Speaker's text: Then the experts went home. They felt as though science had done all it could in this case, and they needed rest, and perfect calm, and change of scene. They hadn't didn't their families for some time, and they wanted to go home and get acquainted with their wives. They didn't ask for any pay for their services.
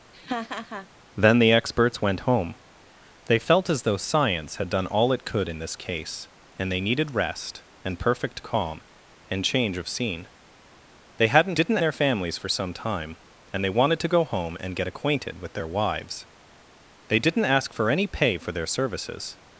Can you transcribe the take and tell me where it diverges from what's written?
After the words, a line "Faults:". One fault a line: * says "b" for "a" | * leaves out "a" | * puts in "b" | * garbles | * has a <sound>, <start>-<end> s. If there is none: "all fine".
Then the experts went home. They felt as though science had done all it could in this case, and they needed rest, and perfect calm, and change of scene. They hadn't didn't their families for some time, and they wanted to go home and get acquainted with their wives. They didn't ask for any pay for their services.
Faults:
* has a laugh, 0.1-0.9 s